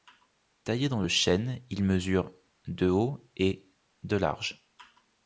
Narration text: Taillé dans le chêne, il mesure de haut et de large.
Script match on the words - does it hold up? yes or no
yes